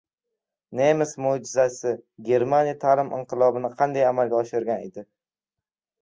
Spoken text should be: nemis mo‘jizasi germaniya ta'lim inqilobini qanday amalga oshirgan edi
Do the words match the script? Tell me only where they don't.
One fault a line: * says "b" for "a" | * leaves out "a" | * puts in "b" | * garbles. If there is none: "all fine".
all fine